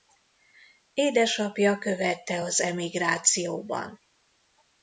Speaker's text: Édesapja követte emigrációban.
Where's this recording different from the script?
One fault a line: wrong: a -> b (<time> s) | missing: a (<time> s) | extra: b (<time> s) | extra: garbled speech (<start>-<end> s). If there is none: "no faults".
extra: az (2.4 s)